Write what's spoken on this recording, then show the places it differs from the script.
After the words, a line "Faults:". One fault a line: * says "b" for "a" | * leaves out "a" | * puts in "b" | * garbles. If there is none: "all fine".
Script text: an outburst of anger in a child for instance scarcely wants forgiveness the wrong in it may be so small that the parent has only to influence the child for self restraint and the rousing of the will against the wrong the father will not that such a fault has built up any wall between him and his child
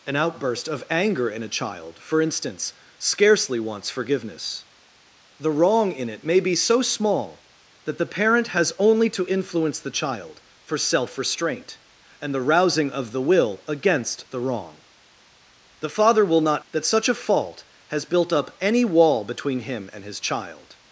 an outburst of anger in a child for instance scarcely wants forgiveness the wrong in it may be so small that the parent has only to influence the child for self restraint and the rousing of the will against the wrong the father will not that such a fault has built up any wall between him and his child
Faults:
all fine